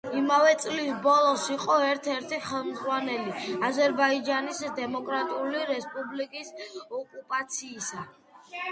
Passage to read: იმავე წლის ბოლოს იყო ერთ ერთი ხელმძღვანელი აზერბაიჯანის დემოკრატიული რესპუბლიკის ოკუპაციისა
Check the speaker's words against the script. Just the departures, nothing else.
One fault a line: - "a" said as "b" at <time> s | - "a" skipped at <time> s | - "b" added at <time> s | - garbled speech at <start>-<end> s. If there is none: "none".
none